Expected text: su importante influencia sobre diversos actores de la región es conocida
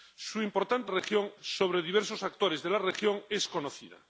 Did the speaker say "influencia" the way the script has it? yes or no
no